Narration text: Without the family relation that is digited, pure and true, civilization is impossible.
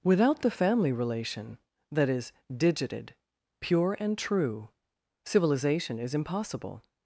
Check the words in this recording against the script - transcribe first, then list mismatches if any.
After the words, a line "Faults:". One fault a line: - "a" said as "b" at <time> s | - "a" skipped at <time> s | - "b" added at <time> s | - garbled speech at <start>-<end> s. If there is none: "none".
Without the family relation that is digited, pure and true, civilization is impossible.
Faults:
none